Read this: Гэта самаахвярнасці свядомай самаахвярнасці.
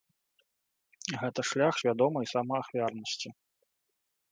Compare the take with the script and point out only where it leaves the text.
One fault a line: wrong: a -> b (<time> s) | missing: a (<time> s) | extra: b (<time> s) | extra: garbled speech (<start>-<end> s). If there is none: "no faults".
wrong: самаахвярнасці -> шлях (1.5 s)